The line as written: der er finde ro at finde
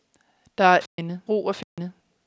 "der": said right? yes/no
yes